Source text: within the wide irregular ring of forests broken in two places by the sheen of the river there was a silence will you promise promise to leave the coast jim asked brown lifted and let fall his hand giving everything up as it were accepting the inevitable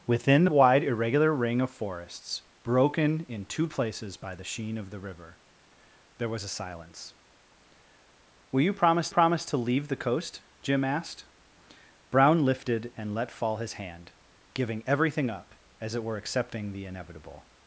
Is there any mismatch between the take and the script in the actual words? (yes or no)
no